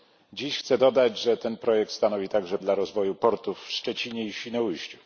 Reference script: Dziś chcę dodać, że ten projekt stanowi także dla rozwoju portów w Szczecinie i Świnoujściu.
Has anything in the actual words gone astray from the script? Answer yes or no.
no